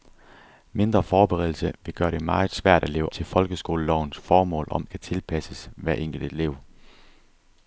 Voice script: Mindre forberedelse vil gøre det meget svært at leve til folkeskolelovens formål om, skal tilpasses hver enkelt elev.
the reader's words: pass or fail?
pass